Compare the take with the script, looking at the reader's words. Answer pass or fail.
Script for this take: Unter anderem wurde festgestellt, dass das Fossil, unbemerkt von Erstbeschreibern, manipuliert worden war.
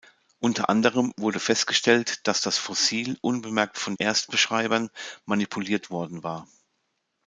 pass